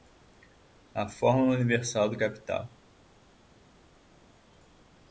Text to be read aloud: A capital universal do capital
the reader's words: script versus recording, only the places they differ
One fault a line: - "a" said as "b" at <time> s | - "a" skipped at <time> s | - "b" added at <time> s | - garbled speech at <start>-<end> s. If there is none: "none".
- "capital" said as "fórmula" at 1.1 s